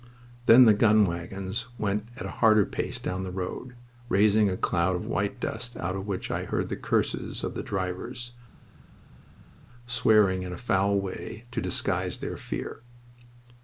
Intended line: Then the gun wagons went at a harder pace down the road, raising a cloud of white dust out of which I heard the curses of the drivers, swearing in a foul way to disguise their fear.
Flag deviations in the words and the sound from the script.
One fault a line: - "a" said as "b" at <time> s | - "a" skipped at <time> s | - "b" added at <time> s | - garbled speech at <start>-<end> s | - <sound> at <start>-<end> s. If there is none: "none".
none